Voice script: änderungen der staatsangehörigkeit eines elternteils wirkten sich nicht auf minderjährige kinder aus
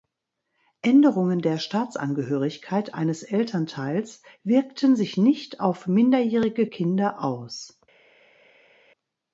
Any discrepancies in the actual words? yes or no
no